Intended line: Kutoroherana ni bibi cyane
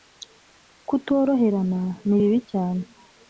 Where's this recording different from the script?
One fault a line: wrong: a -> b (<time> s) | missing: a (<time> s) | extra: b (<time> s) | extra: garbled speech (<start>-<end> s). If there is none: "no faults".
no faults